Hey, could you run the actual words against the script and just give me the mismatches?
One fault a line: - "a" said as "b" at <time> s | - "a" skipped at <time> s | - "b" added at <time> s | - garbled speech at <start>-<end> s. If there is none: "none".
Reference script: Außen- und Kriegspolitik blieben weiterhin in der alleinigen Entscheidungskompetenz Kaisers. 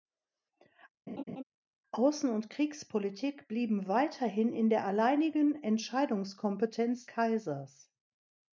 none